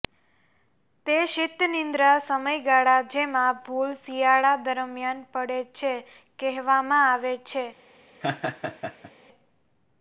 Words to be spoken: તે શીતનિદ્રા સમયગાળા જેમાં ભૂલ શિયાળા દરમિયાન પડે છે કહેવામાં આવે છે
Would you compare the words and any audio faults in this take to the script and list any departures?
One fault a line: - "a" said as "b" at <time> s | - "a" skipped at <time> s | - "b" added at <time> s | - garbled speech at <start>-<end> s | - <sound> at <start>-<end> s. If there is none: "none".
- laugh at 8.2-9.1 s